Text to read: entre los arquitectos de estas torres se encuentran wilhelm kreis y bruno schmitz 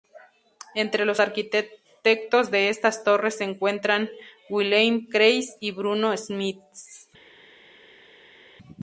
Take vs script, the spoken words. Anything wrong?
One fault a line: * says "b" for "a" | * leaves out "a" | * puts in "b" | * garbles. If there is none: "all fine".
all fine